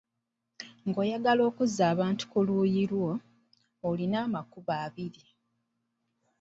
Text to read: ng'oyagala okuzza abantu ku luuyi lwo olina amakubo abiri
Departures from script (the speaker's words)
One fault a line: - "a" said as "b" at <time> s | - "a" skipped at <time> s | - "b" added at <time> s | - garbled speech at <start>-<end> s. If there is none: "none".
none